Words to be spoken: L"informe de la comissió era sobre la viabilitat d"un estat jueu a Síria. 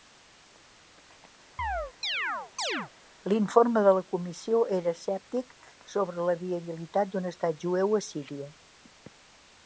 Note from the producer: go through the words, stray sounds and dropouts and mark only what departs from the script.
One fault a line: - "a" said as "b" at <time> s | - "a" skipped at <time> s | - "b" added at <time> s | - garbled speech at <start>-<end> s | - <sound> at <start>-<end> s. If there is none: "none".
- chirp at 1.6-2.9 s
- "escèptic" added at 5.0 s